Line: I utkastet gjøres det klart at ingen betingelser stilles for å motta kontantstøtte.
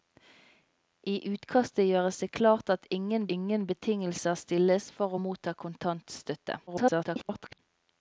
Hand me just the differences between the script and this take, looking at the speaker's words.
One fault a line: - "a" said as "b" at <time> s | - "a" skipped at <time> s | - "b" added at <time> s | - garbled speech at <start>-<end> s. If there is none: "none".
- "ingen" added at 3.4 s
- garbled speech at 6.7-7.6 s